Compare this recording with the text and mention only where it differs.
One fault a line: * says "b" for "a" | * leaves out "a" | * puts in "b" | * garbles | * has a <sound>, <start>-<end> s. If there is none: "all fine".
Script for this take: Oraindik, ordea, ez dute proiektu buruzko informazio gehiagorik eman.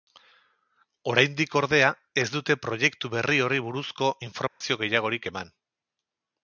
* puts in "berri horri"
* has a dropout, 4.5-4.6 s